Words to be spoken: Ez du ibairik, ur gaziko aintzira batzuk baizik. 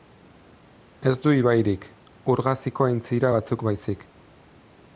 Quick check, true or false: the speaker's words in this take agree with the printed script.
true